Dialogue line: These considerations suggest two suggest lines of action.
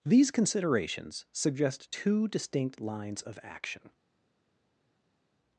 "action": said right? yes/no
yes